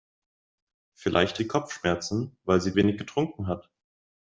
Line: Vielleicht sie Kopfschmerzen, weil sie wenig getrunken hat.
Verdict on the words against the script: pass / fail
pass